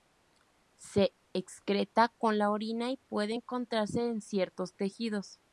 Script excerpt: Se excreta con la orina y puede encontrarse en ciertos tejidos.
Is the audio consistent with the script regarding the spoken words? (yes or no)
yes